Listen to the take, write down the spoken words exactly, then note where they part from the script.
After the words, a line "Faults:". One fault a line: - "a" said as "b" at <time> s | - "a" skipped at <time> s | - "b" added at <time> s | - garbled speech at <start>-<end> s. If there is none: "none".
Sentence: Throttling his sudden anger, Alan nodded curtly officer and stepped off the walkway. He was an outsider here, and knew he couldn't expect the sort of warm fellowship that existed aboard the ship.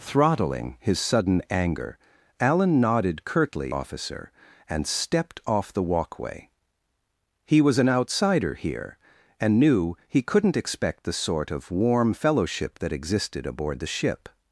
Throttling his sudden anger, Alan nodded curtly officer and stepped off the walkway. He was an outsider here, and knew he couldn't expect the sort of warm fellowship that existed aboard the ship.
Faults:
none